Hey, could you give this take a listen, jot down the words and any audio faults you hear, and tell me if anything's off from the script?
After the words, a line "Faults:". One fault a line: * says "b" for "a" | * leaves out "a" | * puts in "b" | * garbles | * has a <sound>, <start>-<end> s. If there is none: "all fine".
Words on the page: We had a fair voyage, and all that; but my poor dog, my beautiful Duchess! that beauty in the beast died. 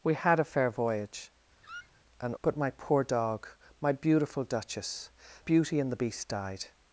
We had a fair voyage, and; but my poor dog, my beautiful Duchess! beauty in the beast died.
Faults:
* has a squeak, 1.6-2.0 s
* leaves out "all that"
* leaves out "that"